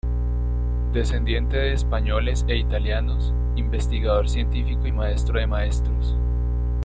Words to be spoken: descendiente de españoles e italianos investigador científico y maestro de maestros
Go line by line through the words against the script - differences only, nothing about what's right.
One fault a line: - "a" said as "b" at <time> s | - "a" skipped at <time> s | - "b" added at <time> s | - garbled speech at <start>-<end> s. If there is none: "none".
none